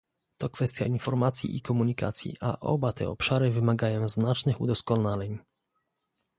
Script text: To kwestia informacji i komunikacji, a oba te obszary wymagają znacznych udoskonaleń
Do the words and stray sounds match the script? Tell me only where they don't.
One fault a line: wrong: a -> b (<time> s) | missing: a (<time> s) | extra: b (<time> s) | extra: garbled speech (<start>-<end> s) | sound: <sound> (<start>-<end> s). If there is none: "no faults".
no faults